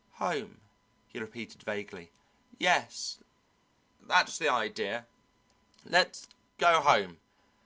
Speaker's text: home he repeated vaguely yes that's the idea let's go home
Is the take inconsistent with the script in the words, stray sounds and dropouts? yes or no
no